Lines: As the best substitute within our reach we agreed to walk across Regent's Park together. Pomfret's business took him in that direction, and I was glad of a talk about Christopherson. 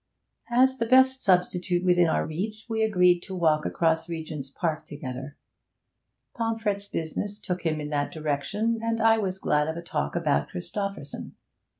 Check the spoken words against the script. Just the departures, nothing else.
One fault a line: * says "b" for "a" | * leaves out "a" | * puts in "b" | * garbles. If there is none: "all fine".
all fine